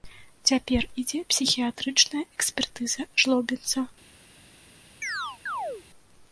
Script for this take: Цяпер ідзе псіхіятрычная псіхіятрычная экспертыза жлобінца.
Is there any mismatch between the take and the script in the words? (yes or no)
yes